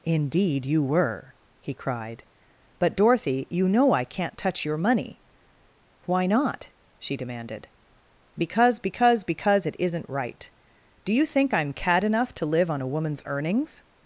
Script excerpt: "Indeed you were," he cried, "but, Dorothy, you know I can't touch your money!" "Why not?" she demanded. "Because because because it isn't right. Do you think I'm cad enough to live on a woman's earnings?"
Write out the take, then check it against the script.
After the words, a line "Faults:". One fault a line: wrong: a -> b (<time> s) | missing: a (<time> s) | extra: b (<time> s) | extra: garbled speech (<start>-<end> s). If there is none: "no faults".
"Indeed you were," he cried, "but, Dorothy, you know I can't touch your money!" "Why not?" she demanded. "Because because because it isn't right. Do you think I'm cad enough to live on a woman's earnings?"
Faults:
no faults